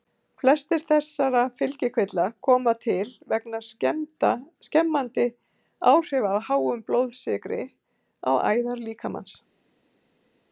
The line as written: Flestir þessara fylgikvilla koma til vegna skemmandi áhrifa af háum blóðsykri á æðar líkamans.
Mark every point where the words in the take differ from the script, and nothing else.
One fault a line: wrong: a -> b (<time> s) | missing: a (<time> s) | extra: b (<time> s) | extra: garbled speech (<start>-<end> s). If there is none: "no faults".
no faults